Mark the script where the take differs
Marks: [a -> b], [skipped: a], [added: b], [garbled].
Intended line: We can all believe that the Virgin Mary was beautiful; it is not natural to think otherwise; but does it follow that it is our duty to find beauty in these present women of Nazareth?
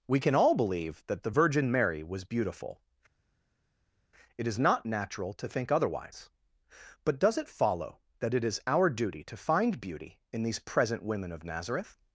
We can all believe that the Virgin Mary was beautiful; it is not natural to think otherwise; but does it follow that it is our duty to find beauty in these present women of Nazareth?